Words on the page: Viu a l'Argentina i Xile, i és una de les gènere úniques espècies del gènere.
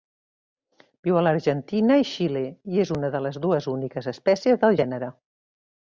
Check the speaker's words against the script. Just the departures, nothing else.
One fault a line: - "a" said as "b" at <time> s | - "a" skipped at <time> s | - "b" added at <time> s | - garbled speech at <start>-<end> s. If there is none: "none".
- "gènere" said as "dues" at 3.5 s